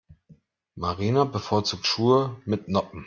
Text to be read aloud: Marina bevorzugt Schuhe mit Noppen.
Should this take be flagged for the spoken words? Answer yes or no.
no